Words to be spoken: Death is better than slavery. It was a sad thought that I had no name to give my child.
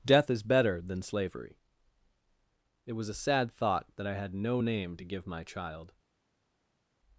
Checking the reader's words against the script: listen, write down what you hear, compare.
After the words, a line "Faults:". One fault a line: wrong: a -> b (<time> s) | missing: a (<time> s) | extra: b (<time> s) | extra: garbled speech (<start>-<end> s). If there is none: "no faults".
Death is better than slavery. It was a sad thought that I had no name to give my child.
Faults:
no faults